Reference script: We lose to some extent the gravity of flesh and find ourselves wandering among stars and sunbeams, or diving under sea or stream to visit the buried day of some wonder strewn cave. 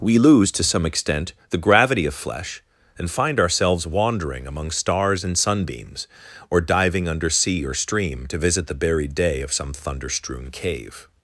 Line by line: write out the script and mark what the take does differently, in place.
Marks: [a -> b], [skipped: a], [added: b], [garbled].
We lose to some extent the gravity of flesh and find ourselves wandering among stars and sunbeams, or diving under sea or stream to visit the buried day of some [wonder -> thunder] strewn cave.